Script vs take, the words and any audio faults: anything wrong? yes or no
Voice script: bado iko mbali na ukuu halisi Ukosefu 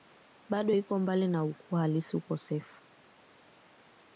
no